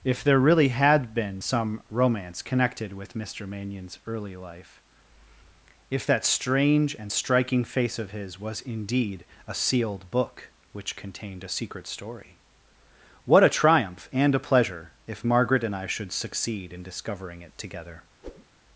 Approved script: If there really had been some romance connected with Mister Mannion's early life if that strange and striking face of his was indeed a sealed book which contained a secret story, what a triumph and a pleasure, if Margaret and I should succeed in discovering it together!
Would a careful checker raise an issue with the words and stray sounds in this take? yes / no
yes